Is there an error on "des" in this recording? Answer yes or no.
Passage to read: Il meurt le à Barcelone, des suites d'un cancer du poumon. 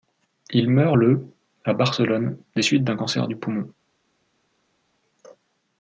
no